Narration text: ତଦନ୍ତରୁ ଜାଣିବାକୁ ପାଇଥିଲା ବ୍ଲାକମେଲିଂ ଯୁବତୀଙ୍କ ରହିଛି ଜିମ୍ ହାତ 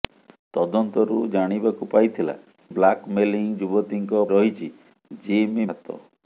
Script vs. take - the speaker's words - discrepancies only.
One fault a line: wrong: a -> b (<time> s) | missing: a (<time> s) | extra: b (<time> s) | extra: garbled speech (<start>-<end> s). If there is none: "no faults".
no faults